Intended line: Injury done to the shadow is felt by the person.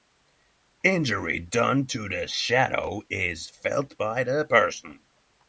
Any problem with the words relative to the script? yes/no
no